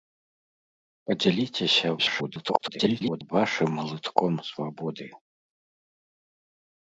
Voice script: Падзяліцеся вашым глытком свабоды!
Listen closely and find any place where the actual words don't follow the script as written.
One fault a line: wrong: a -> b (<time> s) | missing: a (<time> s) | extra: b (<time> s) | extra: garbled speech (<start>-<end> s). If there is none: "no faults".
extra: garbled speech (2.0-3.3 s)